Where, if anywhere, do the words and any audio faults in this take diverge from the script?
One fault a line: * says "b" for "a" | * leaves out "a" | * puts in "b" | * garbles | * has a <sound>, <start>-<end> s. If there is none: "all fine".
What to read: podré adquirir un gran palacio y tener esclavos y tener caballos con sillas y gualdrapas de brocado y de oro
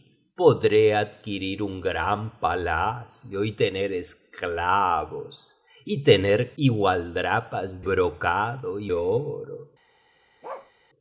* leaves out "caballos con sillas"
* leaves out "de"
* leaves out "de"
* has a bark, 10.4-10.7 s